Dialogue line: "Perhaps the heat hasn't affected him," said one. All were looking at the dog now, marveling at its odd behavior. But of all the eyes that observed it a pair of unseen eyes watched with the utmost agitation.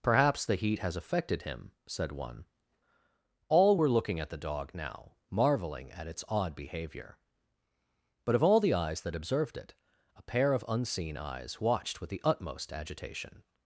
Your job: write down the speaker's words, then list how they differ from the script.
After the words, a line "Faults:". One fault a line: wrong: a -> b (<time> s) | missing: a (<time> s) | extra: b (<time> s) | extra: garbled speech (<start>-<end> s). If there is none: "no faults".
"Perhaps the heat has affected him," said one. All were looking at the dog now, marveling at its odd behavior. But of all the eyes that observed it a pair of unseen eyes watched with the utmost agitation.
Faults:
wrong: hasn't -> has (0.8 s)